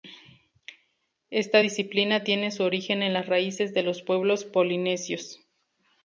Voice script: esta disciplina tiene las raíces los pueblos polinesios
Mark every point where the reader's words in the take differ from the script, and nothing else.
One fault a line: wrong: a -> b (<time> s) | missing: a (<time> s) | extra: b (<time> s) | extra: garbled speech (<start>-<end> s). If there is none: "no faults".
extra: su origen en (2.5 s)
extra: de (3.7 s)